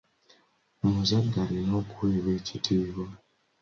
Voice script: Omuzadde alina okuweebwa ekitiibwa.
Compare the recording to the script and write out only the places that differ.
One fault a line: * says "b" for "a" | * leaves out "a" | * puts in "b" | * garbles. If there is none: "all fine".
all fine